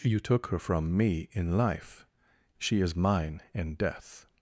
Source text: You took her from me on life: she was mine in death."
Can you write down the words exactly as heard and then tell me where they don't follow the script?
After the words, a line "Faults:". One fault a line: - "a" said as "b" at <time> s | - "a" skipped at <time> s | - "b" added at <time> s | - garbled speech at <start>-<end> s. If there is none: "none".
You took her from me in life: she is mine in death."
Faults:
- "on" said as "in" at 1.3 s
- "was" said as "is" at 2.8 s